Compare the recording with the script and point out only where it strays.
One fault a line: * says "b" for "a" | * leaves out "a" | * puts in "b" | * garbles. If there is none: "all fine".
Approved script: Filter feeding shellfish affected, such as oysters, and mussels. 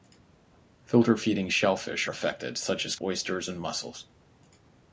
all fine